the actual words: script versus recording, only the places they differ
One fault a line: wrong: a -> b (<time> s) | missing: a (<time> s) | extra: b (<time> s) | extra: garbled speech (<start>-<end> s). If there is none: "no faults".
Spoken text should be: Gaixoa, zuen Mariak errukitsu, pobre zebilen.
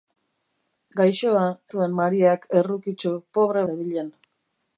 no faults